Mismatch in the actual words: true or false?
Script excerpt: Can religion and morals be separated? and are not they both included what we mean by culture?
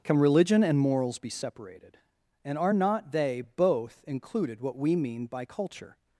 false